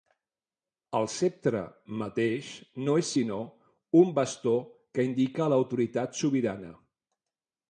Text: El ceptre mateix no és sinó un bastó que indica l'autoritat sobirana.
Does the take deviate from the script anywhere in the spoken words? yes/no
no